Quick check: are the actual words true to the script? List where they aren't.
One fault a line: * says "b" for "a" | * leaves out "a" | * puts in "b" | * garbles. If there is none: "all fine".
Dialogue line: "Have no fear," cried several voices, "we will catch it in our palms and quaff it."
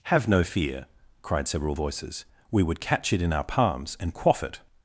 * says "would" for "will"